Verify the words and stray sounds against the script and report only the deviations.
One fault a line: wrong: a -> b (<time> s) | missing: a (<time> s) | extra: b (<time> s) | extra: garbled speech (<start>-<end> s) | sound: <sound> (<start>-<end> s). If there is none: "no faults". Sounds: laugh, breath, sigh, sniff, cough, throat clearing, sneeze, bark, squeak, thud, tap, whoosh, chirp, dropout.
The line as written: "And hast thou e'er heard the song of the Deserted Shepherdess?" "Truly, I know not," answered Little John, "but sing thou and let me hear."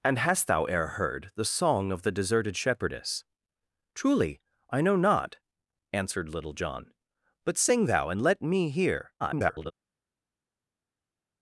extra: garbled speech (9.2-9.7 s)